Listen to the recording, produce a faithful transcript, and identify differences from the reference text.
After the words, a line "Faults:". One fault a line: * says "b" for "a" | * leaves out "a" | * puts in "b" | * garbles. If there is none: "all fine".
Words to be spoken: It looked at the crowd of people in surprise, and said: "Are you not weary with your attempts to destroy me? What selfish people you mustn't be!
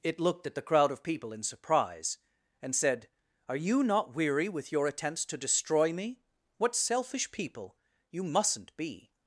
It looked at the crowd of people in surprise, and said: "Are you not weary with your attempts to destroy me? What selfish people you mustn't be!
Faults:
all fine